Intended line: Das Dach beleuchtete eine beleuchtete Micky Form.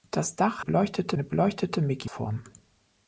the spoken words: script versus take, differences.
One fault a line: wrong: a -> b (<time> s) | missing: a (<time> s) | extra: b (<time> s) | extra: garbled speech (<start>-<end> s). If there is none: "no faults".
no faults